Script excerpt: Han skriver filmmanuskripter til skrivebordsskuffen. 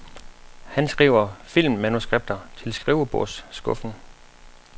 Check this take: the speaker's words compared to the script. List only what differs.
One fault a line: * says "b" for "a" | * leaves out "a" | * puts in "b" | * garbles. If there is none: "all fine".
all fine